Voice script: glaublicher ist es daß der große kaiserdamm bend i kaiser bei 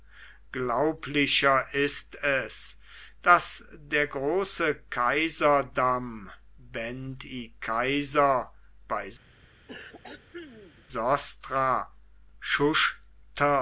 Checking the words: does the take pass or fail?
pass